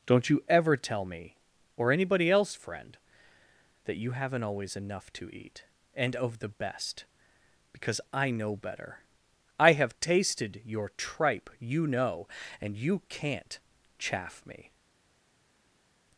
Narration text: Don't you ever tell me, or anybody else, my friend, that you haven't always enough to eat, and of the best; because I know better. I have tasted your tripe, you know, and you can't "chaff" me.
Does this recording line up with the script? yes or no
no